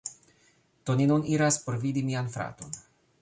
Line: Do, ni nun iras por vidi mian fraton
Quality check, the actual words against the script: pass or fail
pass